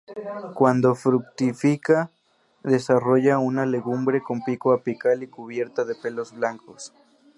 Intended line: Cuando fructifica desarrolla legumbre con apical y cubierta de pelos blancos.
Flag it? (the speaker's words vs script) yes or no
yes